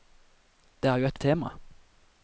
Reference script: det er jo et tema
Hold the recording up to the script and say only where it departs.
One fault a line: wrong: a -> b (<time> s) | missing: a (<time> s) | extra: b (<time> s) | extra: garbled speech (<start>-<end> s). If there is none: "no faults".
no faults